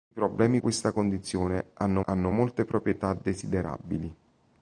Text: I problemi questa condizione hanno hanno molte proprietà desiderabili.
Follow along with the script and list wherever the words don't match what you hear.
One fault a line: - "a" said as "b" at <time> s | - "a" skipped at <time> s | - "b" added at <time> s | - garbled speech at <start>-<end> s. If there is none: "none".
none